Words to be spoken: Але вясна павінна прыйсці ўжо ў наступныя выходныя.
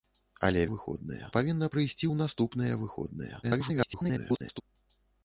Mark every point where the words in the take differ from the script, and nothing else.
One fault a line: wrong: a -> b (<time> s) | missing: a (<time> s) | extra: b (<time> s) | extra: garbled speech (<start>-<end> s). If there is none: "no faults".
wrong: вясна -> выходныя (0.7 s)
missing: ўжо (2.1 s)
extra: garbled speech (3.4-4.6 s)